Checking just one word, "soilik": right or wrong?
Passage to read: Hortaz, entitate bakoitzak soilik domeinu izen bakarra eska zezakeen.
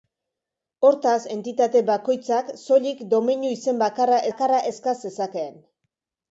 right